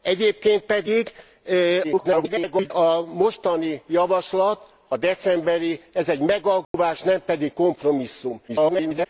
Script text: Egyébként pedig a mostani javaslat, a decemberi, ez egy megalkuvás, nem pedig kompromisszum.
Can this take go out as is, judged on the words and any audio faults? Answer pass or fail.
fail